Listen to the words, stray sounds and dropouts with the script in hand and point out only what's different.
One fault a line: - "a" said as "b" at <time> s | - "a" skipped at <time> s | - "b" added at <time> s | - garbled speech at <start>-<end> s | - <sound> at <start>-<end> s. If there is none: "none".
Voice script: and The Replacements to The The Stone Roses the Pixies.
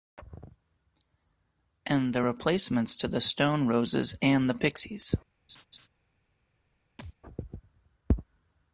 - "The" skipped at 3.2 s
- "and" added at 4.2 s
- laugh at 5.5-5.9 s
- thud at 7.0-7.1 s